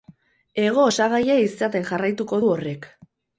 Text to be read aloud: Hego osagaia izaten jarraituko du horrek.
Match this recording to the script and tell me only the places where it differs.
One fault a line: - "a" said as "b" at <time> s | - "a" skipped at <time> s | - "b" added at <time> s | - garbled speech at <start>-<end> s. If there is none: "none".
none